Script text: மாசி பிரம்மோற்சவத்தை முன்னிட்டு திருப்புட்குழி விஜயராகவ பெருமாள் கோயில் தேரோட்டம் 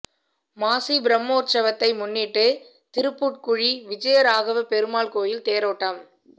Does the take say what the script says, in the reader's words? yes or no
yes